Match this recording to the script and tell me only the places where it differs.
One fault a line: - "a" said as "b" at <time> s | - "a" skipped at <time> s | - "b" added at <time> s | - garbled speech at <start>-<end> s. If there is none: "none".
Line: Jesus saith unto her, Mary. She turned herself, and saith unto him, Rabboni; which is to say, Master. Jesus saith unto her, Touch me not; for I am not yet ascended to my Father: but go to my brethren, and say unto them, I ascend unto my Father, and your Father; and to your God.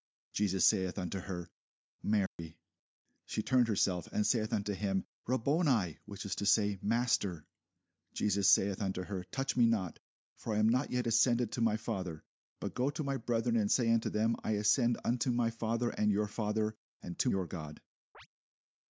none